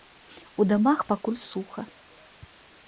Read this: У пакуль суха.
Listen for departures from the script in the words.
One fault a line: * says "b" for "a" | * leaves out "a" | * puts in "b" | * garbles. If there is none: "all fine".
* puts in "дамах"